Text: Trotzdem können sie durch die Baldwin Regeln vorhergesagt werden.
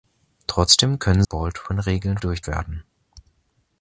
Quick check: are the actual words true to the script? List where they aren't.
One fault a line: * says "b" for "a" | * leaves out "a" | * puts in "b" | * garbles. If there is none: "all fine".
* leaves out "sie durch die"
* says "durch" for "vorhergesagt"